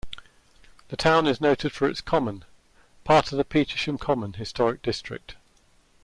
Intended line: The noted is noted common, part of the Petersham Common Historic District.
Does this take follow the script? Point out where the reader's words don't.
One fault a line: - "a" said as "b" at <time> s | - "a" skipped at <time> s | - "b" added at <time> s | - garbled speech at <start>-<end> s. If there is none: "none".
- "noted" said as "town" at 1.0 s
- "for its" added at 1.7 s